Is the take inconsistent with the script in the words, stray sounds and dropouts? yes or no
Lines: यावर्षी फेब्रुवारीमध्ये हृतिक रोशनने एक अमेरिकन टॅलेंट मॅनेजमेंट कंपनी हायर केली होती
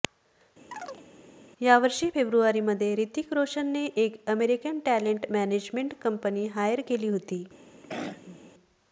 yes